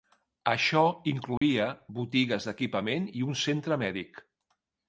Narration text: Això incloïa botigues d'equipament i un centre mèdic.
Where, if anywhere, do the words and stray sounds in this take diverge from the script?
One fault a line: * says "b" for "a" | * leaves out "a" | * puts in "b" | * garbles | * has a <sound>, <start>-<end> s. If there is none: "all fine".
* has a dropout, 1.4-1.4 s